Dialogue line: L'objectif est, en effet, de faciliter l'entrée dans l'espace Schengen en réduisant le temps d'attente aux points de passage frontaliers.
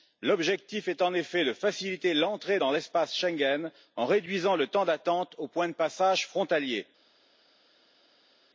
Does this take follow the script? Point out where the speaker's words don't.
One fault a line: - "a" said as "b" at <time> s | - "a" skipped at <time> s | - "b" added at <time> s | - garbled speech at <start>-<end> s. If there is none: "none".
none